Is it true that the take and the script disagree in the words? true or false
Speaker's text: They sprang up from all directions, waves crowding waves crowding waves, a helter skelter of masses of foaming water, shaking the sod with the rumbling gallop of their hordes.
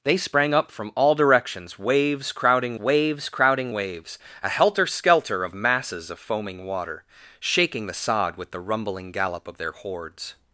false